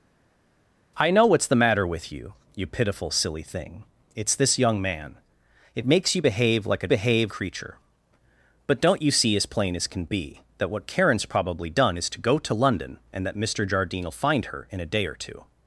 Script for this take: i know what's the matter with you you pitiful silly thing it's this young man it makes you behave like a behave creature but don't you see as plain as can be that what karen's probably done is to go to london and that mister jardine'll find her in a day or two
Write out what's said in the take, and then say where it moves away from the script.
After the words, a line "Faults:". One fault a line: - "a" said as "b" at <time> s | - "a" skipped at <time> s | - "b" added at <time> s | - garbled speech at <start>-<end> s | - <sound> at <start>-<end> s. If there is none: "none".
i know what's the matter with you you pitiful silly thing it's this young man it makes you behave like a behave creature but don't you see as plain as can be that what karen's probably done is to go to london and that mister jardine'll find her in a day or two
Faults:
none